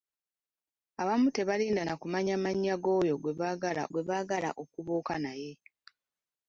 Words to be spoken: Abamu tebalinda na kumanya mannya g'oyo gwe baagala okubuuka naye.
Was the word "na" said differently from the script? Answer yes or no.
no